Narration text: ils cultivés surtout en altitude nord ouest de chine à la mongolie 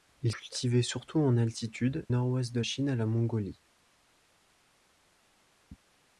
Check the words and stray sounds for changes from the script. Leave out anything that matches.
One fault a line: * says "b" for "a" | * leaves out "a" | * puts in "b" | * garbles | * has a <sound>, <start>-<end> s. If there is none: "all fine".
all fine